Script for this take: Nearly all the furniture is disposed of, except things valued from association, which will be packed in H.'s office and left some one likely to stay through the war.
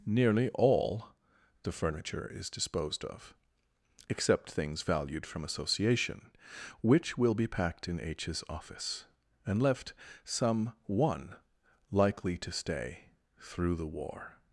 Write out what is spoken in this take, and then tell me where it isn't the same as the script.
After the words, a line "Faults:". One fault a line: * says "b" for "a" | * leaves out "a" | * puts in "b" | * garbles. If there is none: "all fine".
Nearly all the furniture is disposed of, except things valued from association, which will be packed in H.'s office and left some one likely to stay through the war.
Faults:
all fine